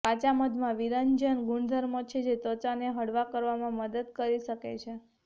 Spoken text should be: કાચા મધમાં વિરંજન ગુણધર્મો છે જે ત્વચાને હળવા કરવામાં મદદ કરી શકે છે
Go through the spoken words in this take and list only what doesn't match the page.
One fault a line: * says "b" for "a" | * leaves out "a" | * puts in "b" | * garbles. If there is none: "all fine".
all fine